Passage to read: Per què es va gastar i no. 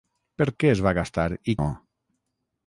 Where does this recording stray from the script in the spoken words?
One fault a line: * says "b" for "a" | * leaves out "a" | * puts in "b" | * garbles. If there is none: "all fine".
all fine